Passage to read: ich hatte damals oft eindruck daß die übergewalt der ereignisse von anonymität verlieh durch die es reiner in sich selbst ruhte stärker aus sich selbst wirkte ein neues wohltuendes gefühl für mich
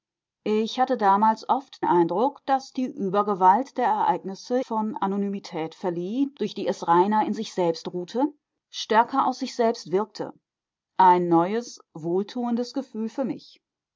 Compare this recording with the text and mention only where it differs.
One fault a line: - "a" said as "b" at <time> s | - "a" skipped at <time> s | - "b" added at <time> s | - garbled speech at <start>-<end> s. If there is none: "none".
none